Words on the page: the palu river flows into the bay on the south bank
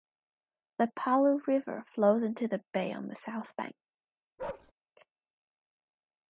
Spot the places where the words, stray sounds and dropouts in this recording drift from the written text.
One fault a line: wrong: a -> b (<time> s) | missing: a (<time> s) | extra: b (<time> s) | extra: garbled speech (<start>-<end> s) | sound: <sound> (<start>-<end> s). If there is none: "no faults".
sound: bark (4.4-4.7 s)